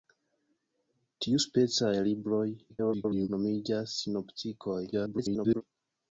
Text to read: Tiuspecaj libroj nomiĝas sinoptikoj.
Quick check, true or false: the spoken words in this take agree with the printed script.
false